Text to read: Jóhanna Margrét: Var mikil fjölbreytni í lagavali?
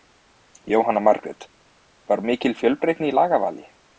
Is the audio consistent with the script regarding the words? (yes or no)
yes